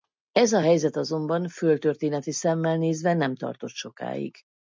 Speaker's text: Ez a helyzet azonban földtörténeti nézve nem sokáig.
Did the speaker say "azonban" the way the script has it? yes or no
yes